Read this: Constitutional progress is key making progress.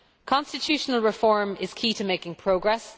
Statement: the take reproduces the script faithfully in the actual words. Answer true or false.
false